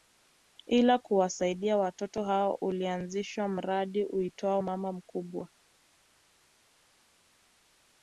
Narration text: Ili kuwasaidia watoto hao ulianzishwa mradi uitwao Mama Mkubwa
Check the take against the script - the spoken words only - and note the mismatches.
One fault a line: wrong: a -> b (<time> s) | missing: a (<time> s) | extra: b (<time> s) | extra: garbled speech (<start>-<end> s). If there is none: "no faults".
no faults